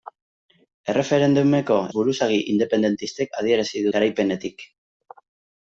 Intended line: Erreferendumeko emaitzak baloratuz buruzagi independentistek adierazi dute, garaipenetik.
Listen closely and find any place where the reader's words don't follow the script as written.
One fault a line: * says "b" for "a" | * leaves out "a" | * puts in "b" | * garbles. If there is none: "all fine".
* leaves out "emaitzak baloratuz"
* leaves out "dute"